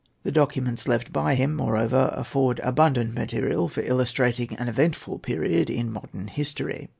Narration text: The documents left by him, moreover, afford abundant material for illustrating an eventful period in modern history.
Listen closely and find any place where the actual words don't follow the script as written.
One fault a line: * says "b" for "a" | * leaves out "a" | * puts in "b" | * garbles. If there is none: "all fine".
all fine